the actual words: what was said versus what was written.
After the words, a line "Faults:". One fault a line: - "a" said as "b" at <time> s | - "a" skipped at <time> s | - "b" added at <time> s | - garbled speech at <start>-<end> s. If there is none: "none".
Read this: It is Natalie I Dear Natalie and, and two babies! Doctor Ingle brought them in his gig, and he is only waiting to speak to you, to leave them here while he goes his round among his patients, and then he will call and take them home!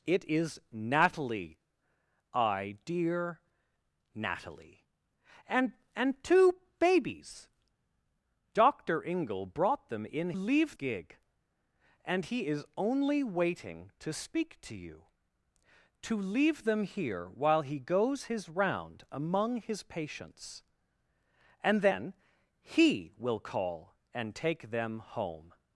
It is Natalie I Dear Natalie and, and two babies! Doctor Ingle brought them in leave gig, and he is only waiting to speak to you, to leave them here while he goes his round among his patients, and then he will call and take them home!
Faults:
- "his" said as "leave" at 10.3 s